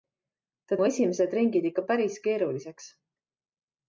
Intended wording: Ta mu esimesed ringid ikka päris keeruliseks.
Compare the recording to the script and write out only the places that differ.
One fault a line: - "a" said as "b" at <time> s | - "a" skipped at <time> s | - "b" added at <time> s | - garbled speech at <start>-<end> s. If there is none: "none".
none